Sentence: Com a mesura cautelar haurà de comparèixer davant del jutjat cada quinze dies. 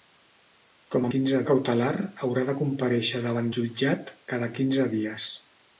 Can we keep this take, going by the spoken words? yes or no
no